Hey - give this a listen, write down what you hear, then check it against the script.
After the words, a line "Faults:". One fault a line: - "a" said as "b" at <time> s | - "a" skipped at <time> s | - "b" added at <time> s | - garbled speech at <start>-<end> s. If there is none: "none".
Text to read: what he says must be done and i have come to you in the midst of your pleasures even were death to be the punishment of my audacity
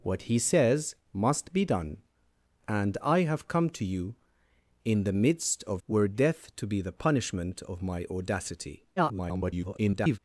what he says must be done and i have come to you in the midst of were death to be the punishment of my audacity [garbled]
Faults:
- "your pleasures even" skipped at 5.8 s
- garbled speech at 9.0-10.2 s